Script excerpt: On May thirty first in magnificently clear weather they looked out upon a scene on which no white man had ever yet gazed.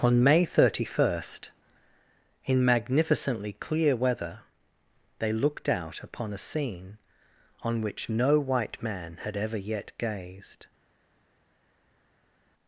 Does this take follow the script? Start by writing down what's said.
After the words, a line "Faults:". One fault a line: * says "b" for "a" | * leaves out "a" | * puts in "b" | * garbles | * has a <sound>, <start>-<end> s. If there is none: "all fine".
On May thirty first in magnificently clear weather they looked out upon a scene on which no white man had ever yet gazed.
Faults:
all fine